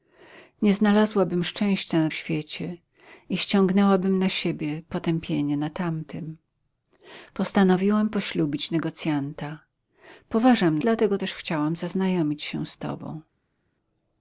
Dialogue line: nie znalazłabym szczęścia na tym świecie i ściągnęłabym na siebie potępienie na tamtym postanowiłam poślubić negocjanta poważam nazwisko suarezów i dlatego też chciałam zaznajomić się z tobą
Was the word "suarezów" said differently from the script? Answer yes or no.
yes